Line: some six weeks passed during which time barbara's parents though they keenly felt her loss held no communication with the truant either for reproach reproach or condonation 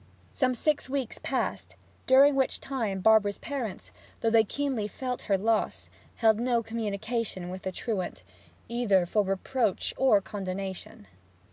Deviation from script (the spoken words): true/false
true